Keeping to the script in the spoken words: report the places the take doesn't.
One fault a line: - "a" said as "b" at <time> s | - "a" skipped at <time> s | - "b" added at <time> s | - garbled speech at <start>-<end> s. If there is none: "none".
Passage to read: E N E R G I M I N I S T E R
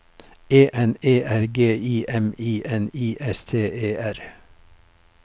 none